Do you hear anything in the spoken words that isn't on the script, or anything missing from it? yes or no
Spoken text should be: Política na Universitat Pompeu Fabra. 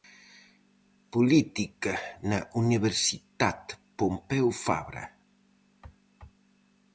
no